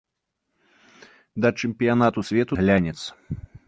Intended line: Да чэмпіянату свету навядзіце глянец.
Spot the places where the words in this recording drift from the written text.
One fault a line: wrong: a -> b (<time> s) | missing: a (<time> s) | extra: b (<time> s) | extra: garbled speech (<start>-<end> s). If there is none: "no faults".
missing: навядзіце (2.5 s)